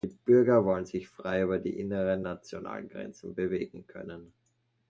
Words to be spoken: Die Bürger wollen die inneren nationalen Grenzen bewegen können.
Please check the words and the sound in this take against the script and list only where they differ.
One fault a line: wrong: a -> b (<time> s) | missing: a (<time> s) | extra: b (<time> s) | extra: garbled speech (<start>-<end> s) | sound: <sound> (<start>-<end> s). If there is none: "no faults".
extra: sich frei über (0.9 s)